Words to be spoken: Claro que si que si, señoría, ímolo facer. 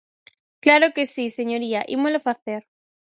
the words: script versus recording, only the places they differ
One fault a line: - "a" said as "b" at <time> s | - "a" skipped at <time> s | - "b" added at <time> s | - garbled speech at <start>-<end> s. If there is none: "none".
- "que si" skipped at 1.3 s